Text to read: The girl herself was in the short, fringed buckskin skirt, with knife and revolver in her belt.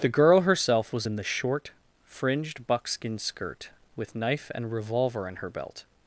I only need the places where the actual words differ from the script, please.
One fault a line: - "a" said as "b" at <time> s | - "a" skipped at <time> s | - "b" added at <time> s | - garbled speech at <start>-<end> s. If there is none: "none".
none